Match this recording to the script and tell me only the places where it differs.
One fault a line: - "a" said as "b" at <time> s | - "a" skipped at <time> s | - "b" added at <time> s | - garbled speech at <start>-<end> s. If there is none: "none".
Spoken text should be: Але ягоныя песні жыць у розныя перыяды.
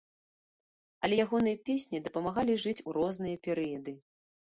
- "дапамагалі" added at 2.0 s